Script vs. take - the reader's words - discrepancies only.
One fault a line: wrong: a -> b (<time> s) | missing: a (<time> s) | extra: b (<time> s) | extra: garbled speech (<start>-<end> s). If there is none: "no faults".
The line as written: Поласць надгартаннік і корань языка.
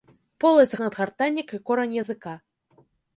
no faults